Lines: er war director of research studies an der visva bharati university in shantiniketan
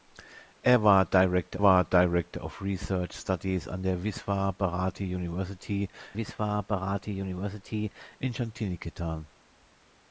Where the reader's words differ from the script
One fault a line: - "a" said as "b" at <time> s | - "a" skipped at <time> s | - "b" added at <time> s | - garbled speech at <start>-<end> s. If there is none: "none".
- "war director" added at 1.6 s
- "visva bharati university" added at 6.1 s